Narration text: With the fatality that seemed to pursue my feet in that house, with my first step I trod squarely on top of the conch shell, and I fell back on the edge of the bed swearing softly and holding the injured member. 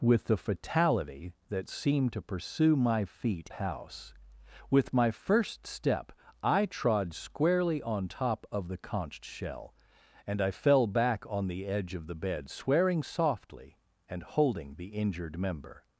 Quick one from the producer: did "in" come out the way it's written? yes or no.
no